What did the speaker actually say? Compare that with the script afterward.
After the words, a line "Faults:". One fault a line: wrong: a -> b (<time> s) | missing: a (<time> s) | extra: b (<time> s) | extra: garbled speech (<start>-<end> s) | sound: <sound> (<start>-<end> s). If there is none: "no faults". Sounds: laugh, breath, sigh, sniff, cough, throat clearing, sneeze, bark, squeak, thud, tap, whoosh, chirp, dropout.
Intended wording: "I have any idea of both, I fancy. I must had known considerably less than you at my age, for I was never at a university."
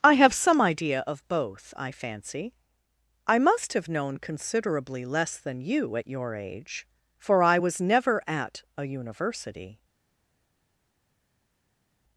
"I have some idea of both, I fancy. I must have known considerably less than you at your age, for I was never at a university."
Faults:
wrong: any -> some (0.3 s)
wrong: had -> have (3.7 s)
wrong: my -> your (6.1 s)